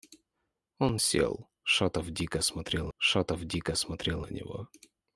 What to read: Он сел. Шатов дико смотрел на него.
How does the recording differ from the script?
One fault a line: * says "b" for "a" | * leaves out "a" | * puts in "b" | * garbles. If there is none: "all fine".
* puts in "шатов дико смотрел"